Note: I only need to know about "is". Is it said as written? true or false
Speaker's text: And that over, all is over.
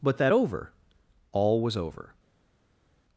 false